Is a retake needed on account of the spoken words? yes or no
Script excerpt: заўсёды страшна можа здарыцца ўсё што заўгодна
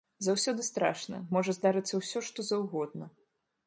no